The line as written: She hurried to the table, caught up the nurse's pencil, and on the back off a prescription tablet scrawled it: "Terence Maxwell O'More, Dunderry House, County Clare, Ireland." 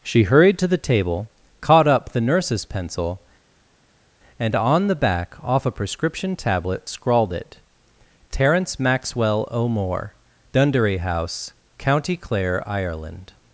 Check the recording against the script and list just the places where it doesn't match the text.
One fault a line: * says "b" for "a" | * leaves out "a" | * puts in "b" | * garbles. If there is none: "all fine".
all fine